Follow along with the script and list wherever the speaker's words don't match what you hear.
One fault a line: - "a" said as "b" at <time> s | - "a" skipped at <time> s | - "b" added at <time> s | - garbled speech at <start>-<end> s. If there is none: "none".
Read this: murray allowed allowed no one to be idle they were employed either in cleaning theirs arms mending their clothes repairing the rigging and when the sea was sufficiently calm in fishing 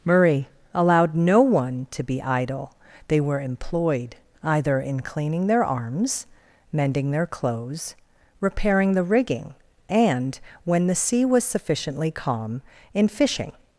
- "allowed" skipped at 1.1 s
- "theirs" said as "their" at 5.5 s